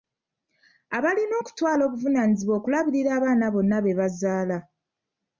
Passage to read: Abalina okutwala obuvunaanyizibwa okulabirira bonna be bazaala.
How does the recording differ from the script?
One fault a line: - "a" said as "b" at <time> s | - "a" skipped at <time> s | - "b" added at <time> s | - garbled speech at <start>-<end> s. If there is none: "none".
- "abaana" added at 3.2 s